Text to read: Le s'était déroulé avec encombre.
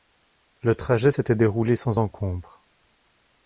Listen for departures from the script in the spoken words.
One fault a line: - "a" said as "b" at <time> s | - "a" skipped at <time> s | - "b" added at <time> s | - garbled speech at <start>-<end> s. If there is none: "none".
- "trajet" added at 0.7 s
- "avec" said as "sans" at 1.7 s